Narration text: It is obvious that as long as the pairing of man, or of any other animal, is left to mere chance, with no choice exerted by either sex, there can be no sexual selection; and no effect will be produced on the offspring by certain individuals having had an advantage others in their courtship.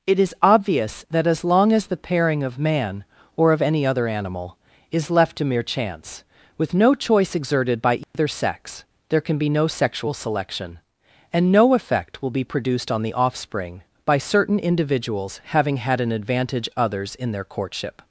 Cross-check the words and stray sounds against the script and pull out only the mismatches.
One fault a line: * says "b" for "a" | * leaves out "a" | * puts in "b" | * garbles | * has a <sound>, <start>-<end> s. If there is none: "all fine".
* has a dropout, 8.0-8.1 s